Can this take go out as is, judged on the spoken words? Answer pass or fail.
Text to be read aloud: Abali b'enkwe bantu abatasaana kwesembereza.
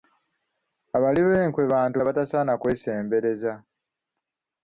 pass